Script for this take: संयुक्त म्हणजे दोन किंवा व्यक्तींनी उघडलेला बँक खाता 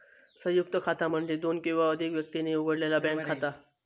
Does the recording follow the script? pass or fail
fail